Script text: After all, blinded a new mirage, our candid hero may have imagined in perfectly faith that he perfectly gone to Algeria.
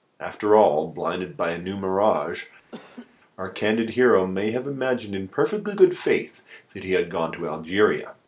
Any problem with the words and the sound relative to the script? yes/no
yes